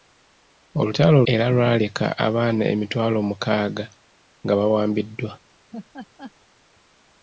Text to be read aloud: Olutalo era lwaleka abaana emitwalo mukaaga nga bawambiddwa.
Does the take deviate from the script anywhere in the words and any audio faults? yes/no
yes